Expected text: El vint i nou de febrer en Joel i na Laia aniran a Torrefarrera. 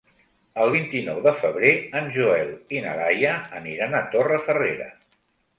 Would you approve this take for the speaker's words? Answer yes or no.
yes